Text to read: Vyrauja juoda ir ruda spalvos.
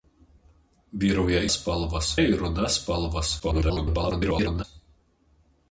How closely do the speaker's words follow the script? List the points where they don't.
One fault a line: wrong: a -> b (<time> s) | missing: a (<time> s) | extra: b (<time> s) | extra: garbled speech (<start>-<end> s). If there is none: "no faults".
wrong: juoda -> spalvos (1.6 s)
extra: garbled speech (3.4-4.6 s)